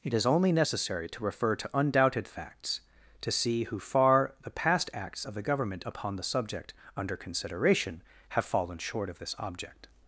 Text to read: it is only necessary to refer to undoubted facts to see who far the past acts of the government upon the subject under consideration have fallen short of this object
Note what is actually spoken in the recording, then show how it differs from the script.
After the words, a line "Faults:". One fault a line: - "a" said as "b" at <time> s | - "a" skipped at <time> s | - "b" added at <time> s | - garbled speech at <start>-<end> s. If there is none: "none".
it is only necessary to refer to undoubted facts to see who far the past acts of the government upon the subject under consideration have fallen short of this object
Faults:
none